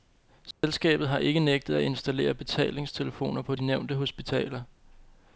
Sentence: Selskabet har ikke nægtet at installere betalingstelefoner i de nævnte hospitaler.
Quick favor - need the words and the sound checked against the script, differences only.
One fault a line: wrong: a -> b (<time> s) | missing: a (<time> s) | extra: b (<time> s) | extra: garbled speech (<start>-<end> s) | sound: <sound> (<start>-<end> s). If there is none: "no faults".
sound: dropout (0.5-0.6 s)
wrong: i -> på (3.4 s)